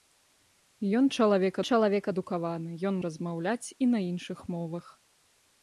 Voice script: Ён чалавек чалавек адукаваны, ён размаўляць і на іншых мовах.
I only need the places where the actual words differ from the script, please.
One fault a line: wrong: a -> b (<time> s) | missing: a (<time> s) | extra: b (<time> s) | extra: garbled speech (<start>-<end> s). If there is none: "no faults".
no faults